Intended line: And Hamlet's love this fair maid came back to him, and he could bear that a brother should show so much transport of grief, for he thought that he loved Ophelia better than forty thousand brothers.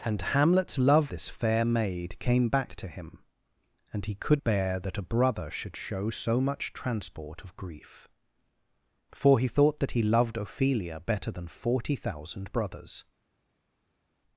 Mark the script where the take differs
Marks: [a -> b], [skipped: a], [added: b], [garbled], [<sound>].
And Hamlet's love this fair maid came back to him, and he could bear that a brother should show so much transport of grief, for he thought that he loved Ophelia better than forty thousand brothers.